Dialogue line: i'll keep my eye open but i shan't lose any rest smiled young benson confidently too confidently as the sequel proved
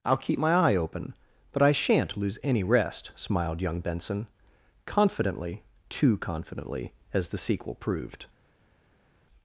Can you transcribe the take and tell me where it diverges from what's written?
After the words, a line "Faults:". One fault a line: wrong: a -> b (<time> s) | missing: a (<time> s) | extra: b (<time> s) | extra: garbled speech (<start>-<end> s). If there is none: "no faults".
i'll keep my eye open but i shan't lose any rest smiled young benson confidently too confidently as the sequel proved
Faults:
no faults